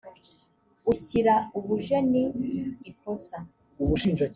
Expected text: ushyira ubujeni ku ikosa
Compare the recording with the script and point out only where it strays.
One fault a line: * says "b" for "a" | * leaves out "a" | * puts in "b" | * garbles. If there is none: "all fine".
* leaves out "ku"